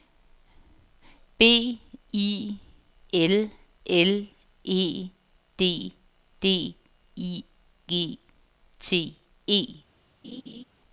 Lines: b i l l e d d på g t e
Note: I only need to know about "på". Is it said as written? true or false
false